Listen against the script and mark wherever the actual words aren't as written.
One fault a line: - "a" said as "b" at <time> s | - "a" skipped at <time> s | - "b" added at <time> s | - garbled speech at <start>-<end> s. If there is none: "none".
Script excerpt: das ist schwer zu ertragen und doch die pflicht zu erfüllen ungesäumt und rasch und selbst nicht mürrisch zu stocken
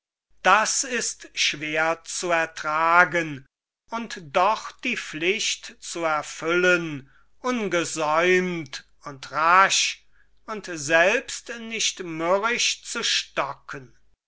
none